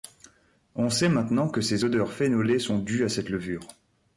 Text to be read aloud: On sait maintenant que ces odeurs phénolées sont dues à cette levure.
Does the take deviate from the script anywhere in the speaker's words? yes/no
no